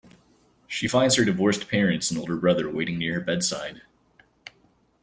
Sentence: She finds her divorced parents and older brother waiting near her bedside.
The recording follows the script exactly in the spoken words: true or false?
true